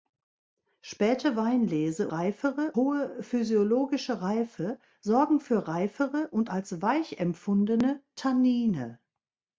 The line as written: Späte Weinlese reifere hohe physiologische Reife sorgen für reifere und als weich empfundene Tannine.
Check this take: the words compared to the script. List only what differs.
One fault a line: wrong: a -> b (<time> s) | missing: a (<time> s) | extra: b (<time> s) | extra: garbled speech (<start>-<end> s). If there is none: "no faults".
no faults